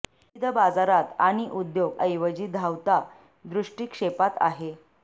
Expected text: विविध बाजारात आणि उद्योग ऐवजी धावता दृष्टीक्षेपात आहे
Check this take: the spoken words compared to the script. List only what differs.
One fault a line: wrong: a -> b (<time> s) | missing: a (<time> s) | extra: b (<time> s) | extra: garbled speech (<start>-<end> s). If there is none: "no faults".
no faults